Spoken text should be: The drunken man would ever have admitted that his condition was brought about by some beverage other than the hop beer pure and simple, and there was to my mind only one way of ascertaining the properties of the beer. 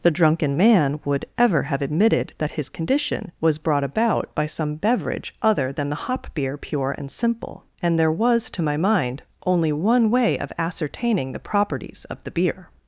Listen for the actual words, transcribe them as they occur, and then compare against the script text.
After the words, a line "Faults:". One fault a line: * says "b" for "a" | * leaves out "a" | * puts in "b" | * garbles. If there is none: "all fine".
The drunken man would ever have admitted that his condition was brought about by some beverage other than the hop beer pure and simple, and there was to my mind only one way of ascertaining the properties of the beer.
Faults:
all fine